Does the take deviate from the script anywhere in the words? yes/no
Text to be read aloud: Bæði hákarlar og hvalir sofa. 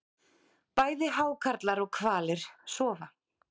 no